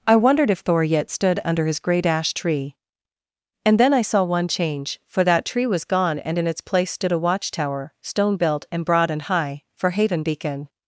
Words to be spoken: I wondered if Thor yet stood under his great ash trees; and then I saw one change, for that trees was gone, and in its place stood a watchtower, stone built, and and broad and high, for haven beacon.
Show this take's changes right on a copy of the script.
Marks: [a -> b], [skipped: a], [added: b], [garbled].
I wondered if Thor yet stood under his great ash [trees; -> tree] and then I saw one change, for that [trees -> tree] was gone, and in its place stood a watchtower, stone built, and [skipped: and] broad and high, for haven beacon.